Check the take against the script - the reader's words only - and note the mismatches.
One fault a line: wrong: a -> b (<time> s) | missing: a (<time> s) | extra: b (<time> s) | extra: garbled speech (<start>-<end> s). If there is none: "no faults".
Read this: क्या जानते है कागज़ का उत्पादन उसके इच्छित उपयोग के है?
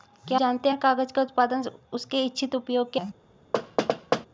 no faults